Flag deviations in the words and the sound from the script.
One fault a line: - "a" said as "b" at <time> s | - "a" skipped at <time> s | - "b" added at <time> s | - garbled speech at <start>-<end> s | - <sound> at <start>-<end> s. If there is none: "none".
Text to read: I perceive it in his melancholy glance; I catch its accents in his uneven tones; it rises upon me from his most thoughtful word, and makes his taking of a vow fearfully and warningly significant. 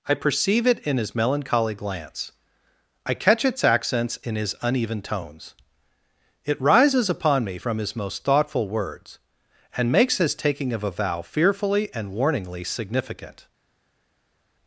- "word" said as "words" at 8.7 s